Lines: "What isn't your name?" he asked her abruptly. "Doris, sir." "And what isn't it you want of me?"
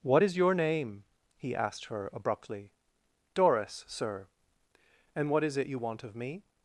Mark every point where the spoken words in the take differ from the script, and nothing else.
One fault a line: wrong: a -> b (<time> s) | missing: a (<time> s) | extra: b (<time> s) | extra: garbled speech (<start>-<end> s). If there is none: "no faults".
wrong: isn't -> is (0.2 s)
wrong: isn't -> is (5.4 s)